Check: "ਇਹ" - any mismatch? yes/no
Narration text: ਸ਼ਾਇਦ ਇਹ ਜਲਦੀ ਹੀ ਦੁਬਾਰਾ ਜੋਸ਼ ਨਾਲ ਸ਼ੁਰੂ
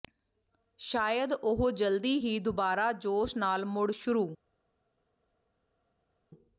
yes